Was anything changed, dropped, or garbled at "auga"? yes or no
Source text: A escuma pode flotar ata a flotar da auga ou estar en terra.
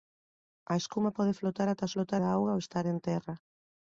no